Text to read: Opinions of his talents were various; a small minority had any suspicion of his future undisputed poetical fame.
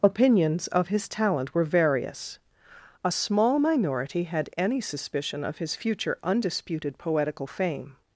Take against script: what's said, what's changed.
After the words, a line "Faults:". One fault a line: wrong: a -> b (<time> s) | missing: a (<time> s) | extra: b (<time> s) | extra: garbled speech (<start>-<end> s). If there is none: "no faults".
Opinions of his talent were various; a small minority had any suspicion of his future undisputed poetical fame.
Faults:
wrong: talents -> talent (1.1 s)